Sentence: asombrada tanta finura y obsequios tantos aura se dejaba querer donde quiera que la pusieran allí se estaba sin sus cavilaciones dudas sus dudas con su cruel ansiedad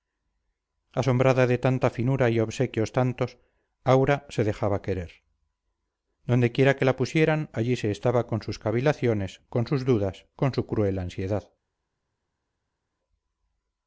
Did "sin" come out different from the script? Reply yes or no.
yes